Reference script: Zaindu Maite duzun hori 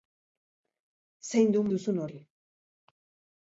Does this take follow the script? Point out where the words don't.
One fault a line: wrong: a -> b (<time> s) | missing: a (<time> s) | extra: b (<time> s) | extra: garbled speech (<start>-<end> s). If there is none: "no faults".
missing: Maite (1.6 s)